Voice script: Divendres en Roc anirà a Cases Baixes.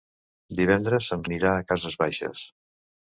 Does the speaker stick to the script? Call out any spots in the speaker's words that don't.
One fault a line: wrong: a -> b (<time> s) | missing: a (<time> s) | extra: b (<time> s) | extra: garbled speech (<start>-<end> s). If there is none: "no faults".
missing: Roc (1.3 s)